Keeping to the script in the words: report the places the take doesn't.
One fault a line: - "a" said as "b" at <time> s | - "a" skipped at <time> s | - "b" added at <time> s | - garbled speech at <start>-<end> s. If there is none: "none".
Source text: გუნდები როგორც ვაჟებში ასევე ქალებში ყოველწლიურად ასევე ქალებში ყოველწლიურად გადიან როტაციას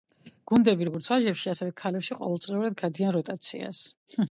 - "ასევე ქალებში ყოველწლიურად" skipped at 2.8 s